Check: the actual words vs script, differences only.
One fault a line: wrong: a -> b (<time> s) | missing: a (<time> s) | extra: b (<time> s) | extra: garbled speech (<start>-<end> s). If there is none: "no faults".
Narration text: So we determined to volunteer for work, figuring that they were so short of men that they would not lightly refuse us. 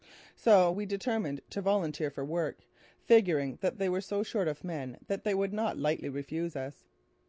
no faults